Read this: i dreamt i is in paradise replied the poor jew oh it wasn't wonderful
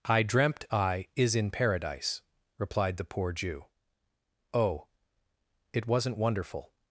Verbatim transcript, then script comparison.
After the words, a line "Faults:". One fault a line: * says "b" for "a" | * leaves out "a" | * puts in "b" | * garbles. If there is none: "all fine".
i dreamt i is in paradise replied the poor jew oh it wasn't wonderful
Faults:
all fine